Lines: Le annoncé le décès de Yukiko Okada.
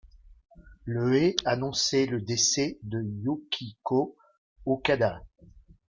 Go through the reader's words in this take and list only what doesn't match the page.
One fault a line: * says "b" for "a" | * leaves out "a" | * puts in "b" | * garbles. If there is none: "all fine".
* puts in "est"